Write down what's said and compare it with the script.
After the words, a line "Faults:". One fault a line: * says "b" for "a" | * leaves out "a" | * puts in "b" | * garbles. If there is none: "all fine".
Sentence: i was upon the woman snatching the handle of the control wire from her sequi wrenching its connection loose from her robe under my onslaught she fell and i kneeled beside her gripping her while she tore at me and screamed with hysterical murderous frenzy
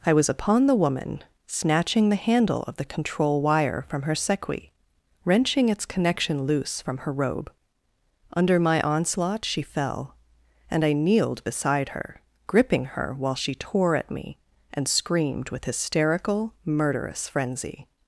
i was upon the woman snatching the handle of the control wire from her sequi wrenching its connection loose from her robe under my onslaught she fell and i kneeled beside her gripping her while she tore at me and screamed with hysterical murderous frenzy
Faults:
all fine